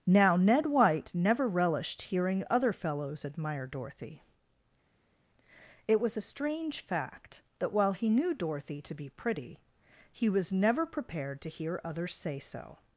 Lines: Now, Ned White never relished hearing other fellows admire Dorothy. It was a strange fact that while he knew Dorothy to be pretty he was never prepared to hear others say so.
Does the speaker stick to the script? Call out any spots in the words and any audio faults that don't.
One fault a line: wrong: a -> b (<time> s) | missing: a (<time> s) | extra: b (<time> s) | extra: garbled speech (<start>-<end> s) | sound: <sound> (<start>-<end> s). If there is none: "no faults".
no faults